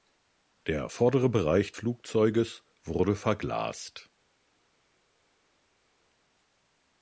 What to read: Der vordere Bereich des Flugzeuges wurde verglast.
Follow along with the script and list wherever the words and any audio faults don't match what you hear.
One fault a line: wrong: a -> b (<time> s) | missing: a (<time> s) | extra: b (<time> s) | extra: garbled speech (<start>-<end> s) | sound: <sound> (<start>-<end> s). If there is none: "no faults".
missing: des (1.7 s)